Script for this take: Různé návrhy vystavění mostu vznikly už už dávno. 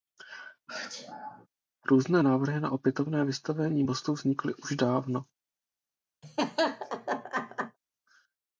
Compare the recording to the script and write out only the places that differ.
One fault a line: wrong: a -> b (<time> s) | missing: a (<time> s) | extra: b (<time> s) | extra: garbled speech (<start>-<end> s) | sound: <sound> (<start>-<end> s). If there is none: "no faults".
sound: sneeze (0.7-1.5 s)
extra: na opětovné (2.6 s)
missing: už (4.7 s)
sound: laugh (6.2-7.8 s)